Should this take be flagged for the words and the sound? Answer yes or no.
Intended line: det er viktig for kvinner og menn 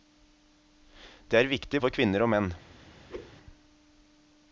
yes